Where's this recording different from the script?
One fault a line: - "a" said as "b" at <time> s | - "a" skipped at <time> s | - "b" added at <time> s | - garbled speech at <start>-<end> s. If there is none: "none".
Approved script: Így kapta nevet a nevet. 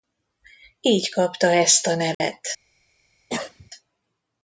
- "nevet" said as "ezt" at 1.5 s